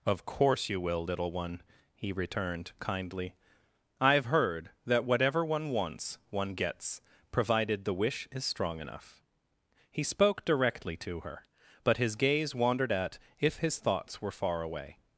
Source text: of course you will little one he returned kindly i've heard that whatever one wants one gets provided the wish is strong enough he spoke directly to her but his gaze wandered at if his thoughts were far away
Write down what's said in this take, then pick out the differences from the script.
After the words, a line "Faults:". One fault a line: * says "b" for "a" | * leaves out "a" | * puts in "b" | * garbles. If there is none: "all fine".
of course you will little one he returned kindly i've heard that whatever one wants one gets provided the wish is strong enough he spoke directly to her but his gaze wandered at if his thoughts were far away
Faults:
all fine